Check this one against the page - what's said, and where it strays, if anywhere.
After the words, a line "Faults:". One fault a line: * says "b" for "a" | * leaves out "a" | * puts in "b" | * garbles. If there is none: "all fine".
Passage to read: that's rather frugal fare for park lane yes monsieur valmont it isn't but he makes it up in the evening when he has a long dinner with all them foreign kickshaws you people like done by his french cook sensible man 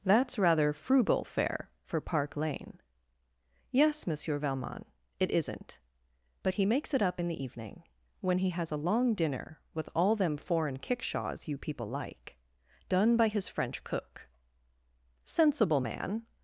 that's rather frugal fare for park lane yes monsieur valmont it isn't but he makes it up in the evening when he has a long dinner with all them foreign kickshaws you people like done by his french cook sensible man
Faults:
all fine